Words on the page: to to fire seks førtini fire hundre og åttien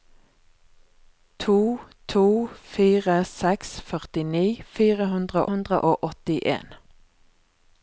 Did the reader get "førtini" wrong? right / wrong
right